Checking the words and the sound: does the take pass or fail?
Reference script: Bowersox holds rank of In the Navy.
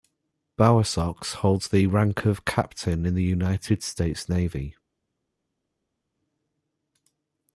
fail